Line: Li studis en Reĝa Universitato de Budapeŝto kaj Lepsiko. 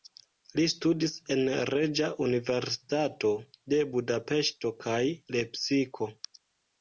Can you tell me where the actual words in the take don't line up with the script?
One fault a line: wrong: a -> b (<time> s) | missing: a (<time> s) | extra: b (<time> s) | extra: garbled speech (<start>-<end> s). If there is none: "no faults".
no faults